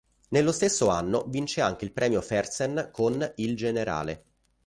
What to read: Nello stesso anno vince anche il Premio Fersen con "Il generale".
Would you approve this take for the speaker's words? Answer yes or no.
yes